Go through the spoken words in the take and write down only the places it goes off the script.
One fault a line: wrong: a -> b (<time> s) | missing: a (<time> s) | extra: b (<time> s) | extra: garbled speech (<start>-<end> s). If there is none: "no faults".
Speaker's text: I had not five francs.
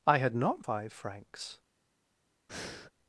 no faults